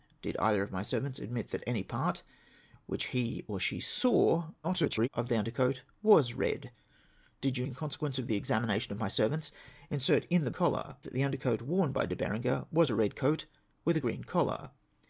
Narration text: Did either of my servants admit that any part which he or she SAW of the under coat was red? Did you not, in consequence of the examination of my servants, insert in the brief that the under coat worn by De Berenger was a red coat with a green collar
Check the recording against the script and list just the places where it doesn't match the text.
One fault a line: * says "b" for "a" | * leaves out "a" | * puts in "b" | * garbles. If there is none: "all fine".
* garbles
* leaves out "not"
* says "collar" for "brief"